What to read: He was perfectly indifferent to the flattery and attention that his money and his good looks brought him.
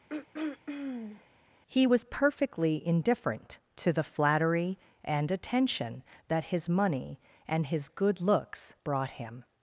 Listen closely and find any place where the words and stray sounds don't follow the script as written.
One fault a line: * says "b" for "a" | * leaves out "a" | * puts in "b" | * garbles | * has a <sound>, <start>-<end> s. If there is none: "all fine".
* has a throat clearing, 0.1-1.3 s